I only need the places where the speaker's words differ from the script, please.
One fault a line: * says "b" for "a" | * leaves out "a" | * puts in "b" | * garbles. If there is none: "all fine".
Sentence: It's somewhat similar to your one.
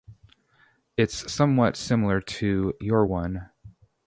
all fine